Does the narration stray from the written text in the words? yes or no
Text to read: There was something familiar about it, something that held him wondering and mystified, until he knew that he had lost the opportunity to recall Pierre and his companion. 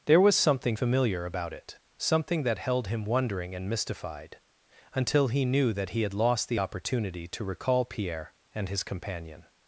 no